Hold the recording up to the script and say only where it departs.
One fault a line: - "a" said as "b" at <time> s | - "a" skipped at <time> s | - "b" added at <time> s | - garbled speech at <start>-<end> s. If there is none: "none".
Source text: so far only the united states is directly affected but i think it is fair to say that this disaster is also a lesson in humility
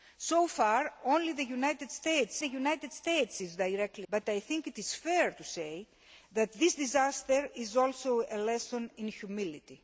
- "the united states" added at 2.4 s
- "affected" skipped at 4.1 s